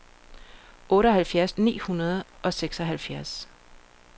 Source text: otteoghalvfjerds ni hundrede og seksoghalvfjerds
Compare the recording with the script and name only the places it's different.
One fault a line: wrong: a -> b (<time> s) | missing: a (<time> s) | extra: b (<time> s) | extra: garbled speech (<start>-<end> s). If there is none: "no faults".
no faults